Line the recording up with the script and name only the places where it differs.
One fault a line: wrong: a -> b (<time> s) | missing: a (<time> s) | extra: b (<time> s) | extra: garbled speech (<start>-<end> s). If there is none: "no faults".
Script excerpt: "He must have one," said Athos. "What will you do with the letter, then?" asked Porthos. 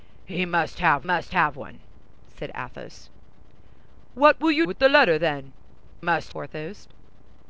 extra: must have (1.0 s)
missing: do (4.7 s)
wrong: asked -> must (6.0 s)